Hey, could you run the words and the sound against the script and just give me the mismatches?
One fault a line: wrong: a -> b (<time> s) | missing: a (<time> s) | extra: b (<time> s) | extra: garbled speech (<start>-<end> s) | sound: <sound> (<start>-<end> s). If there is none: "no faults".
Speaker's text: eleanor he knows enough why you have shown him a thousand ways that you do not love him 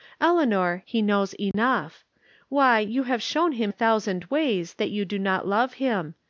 sound: dropout (1.5-1.5 s)